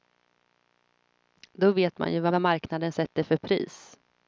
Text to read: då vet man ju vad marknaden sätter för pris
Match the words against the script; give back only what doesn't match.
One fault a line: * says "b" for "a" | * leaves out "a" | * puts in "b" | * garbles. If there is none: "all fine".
* puts in "vad"